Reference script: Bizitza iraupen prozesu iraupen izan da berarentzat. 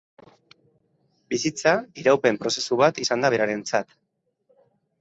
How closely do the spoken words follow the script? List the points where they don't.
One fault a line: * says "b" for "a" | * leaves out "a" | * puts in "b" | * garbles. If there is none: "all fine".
* says "bat" for "iraupen"